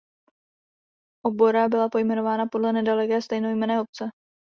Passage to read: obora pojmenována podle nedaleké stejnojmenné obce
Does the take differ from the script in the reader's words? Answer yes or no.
yes